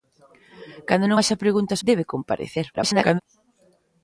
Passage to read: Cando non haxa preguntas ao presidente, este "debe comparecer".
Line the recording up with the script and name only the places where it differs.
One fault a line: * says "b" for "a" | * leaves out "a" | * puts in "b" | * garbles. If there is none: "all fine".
* leaves out "ao presidente este"
* garbles